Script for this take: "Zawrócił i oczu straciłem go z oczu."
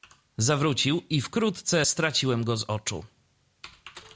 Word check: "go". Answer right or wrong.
right